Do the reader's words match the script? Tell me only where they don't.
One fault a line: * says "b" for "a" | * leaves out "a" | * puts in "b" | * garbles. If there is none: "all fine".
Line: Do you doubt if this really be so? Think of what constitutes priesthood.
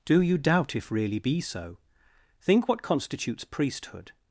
* leaves out "this"
* leaves out "of"